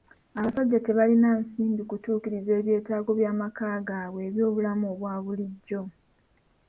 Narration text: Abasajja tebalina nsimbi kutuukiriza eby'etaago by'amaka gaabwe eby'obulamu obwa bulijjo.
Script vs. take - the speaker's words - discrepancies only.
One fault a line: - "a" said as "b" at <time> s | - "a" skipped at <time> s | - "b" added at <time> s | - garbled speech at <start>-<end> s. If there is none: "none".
none